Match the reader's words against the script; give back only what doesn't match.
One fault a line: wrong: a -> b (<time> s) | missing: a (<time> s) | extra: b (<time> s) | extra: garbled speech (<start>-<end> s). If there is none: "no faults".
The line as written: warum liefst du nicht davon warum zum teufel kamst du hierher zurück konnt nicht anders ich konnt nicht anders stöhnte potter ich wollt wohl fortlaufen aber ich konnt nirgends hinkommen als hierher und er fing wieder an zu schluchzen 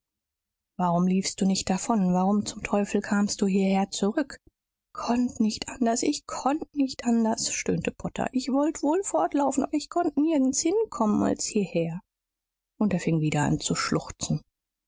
no faults